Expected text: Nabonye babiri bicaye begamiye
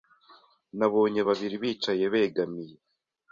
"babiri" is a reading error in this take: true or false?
false